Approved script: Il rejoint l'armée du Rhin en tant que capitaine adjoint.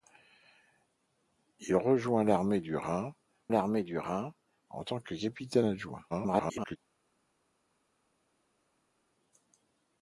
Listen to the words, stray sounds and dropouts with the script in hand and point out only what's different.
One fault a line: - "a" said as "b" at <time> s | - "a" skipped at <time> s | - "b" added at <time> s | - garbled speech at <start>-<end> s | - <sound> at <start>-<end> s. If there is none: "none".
- "l'armée du Rhin" added at 3.5 s
- garbled speech at 6.1-6.8 s